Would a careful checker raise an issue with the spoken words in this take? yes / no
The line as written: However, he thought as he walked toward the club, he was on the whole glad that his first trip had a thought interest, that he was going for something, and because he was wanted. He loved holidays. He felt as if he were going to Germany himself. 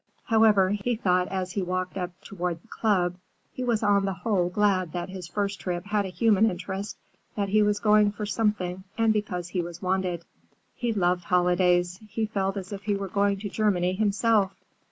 yes